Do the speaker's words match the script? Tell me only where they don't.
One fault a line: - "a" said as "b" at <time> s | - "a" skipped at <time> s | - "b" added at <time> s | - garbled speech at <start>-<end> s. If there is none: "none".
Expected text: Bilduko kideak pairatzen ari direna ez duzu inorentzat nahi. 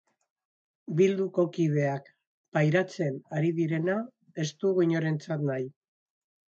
- "duzu" said as "dugu" at 4.6 s